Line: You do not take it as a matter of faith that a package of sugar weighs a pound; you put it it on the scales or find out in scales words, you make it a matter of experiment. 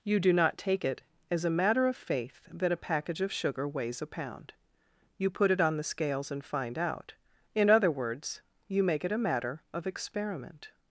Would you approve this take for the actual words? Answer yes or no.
no